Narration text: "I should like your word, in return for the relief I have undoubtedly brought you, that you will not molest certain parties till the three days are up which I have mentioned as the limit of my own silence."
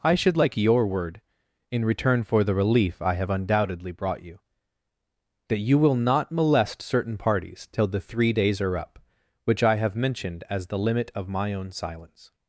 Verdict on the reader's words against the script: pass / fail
pass